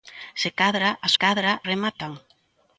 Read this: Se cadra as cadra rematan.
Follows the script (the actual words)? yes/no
yes